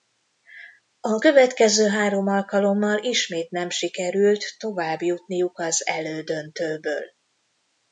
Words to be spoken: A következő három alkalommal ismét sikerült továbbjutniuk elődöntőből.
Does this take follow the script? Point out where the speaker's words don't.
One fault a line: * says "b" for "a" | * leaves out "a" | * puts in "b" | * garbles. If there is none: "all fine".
* puts in "nem"
* puts in "az"